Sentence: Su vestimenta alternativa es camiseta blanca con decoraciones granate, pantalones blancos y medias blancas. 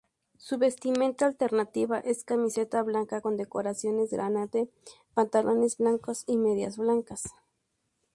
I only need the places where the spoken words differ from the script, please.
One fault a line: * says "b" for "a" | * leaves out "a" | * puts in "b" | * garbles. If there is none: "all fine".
all fine